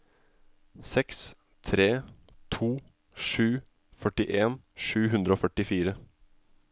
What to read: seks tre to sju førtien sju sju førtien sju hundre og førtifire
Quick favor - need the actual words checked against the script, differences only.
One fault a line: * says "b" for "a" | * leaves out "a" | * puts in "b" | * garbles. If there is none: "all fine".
* leaves out "sju førtien sju"